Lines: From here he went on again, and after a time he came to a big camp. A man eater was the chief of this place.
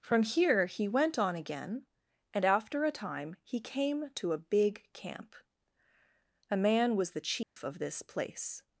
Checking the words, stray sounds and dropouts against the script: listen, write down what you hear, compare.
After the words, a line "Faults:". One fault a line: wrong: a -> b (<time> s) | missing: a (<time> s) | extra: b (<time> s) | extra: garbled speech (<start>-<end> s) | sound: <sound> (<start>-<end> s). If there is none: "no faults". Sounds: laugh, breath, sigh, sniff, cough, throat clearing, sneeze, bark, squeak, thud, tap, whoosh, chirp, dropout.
From here he went on again, and after a time he came to a big camp. A man was the chief of this place.
Faults:
missing: eater (7.0 s)
sound: dropout (7.4-7.6 s)